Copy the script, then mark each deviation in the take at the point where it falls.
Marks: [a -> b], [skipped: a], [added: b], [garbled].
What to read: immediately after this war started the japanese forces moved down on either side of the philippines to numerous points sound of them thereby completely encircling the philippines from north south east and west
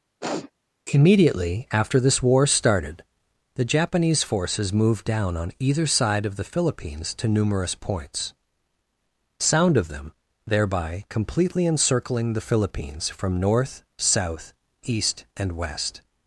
immediately after this war started the japanese forces moved down on either side of the philippines to numerous points sound of them thereby completely encircling the philippines from north south east and west